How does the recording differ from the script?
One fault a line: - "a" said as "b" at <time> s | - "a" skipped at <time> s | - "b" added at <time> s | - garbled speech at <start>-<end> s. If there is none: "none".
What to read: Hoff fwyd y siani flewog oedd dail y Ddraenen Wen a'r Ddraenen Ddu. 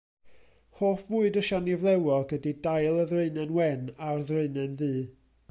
- "oedd" said as "ydy" at 2.4 s